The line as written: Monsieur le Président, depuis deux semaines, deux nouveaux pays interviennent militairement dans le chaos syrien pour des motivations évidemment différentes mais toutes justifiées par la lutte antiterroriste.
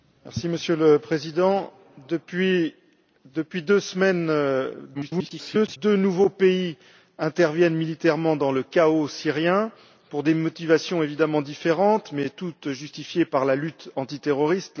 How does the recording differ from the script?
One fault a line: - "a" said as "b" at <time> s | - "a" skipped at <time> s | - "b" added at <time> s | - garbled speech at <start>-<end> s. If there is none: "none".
- garbled speech at 4.9-5.8 s